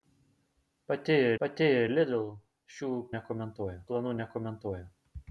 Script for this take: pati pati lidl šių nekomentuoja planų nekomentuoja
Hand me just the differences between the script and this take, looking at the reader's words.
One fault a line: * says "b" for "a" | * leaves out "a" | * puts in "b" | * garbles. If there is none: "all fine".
all fine